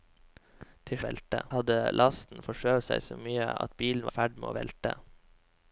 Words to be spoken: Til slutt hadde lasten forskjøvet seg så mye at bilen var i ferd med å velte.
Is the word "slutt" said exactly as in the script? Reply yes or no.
no